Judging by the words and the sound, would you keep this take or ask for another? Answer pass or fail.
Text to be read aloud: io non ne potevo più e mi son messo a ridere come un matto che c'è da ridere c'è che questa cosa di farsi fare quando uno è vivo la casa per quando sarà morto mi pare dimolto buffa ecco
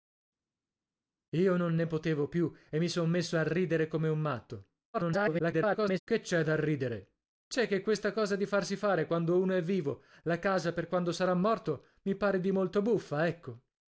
fail